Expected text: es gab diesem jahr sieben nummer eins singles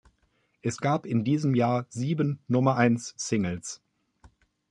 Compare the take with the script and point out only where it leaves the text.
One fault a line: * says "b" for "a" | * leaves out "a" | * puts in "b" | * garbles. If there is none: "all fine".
* puts in "in"